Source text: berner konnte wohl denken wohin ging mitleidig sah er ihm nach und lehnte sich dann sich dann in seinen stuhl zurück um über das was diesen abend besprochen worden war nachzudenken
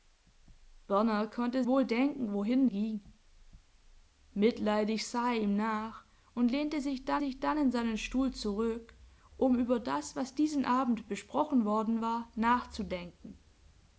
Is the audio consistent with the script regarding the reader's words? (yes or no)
yes